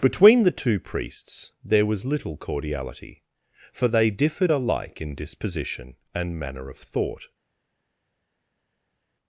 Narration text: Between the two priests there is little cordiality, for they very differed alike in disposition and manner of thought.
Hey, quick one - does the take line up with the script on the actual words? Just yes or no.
no